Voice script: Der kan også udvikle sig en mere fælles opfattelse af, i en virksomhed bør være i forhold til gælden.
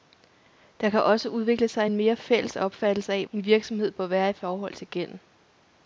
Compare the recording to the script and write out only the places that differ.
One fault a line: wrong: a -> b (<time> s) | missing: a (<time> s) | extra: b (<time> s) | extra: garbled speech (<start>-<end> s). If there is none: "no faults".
no faults